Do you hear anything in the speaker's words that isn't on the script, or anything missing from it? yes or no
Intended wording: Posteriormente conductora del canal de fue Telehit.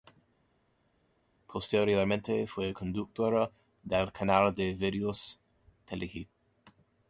yes